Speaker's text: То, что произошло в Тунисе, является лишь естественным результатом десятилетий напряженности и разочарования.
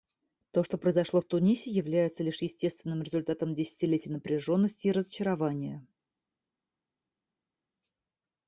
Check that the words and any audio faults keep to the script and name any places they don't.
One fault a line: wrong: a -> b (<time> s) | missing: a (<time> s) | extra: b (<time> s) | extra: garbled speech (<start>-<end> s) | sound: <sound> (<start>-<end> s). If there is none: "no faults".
no faults